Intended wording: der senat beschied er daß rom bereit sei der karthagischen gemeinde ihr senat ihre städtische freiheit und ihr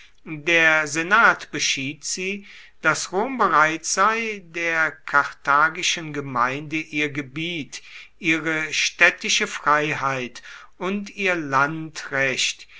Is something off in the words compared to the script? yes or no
yes